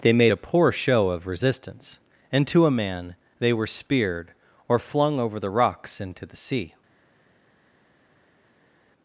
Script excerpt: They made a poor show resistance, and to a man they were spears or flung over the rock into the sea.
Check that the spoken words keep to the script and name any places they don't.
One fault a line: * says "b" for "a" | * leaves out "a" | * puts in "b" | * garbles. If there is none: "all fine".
* puts in "of"
* says "speared" for "spears"
* says "rocks" for "rock"